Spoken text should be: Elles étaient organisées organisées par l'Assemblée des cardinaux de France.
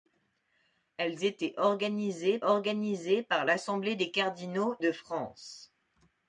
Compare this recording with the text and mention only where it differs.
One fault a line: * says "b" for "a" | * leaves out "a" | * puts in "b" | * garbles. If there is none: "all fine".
all fine